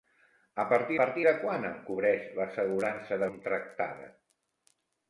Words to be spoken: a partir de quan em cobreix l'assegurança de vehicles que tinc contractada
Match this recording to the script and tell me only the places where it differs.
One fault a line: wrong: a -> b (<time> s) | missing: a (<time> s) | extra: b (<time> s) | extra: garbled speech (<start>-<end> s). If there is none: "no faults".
extra: partir (1.0 s)
missing: vehicles que tinc (3.3 s)